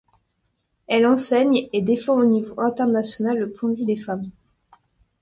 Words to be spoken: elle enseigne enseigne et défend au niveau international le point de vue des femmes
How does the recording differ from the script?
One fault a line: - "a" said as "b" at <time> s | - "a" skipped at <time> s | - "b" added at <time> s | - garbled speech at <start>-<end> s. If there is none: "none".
- "enseigne" skipped at 1.7 s